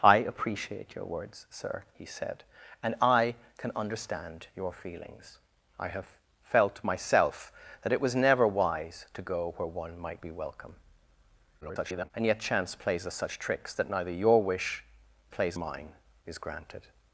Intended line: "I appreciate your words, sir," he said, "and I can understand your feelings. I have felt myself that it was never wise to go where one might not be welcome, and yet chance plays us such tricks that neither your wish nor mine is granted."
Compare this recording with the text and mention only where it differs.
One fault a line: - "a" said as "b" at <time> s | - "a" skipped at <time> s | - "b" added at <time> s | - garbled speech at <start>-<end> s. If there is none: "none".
- "not" skipped at 10.2 s
- garbled speech at 11.6-12.1 s
- "nor" said as "plays" at 15.3 s